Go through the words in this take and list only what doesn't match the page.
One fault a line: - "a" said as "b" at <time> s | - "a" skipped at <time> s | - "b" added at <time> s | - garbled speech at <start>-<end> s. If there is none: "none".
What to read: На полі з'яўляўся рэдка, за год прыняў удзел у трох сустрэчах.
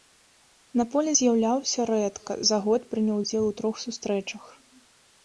none